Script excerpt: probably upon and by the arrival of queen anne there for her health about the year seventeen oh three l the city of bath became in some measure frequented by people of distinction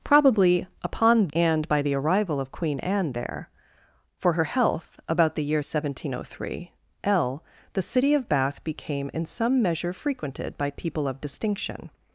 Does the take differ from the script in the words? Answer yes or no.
no